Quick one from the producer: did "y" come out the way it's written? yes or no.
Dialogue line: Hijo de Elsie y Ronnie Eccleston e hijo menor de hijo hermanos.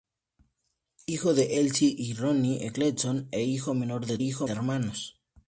yes